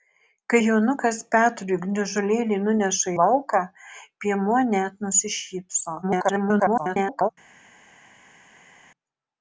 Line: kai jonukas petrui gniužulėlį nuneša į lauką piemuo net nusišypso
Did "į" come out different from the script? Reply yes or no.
yes